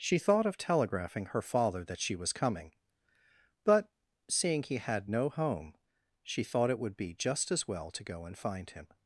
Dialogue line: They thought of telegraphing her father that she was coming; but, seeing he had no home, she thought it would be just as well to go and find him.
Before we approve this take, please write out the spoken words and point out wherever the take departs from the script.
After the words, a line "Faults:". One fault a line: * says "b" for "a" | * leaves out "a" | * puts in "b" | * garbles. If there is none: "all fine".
She thought of telegraphing her father that she was coming; but, seeing he had no home, she thought it would be just as well to go and find him.
Faults:
* says "She" for "They"